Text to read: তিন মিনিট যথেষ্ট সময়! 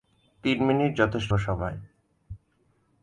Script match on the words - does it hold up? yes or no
yes